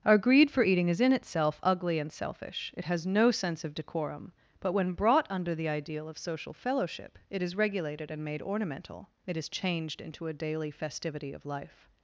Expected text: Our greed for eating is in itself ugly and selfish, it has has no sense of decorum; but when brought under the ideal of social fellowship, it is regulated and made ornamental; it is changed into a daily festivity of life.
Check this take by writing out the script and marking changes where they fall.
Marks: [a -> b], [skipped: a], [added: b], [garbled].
Our greed for eating is in itself ugly and selfish, it has [skipped: has] no sense of decorum; but when brought under the ideal of social fellowship, it is regulated and made ornamental; it is changed into a daily festivity of life.